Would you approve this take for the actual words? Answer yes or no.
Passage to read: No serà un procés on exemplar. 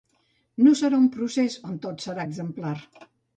no